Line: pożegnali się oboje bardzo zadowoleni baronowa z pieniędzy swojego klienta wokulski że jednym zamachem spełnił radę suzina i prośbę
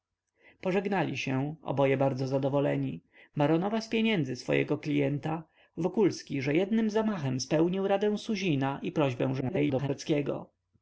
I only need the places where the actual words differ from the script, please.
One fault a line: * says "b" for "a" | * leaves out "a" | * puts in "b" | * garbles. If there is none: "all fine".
* garbles